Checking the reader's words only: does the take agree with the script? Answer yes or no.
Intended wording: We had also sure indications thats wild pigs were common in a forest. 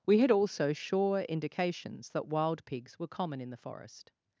no